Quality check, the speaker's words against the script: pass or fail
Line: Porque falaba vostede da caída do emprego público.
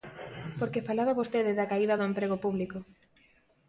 pass